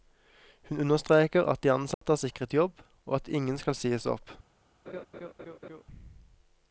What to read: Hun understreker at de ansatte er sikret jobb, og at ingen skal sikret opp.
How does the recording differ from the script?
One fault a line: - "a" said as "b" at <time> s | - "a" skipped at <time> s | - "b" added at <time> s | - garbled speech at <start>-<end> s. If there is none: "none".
- "sikret" said as "sies" at 3.8 s